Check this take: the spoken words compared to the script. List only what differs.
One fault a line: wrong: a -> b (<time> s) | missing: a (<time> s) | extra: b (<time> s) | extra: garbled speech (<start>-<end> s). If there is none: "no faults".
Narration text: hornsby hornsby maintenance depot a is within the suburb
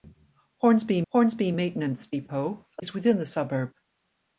no faults